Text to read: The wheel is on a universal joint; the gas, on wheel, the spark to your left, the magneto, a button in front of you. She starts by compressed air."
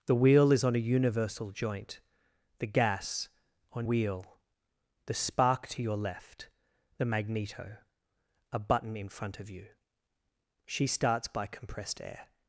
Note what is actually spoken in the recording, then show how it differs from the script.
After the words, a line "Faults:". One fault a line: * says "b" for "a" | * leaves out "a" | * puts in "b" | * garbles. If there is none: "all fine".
The wheel is on a universal joint; the gas, on wheel, the spark to your left, the magneto, a button in front of you. She starts by compressed air."
Faults:
all fine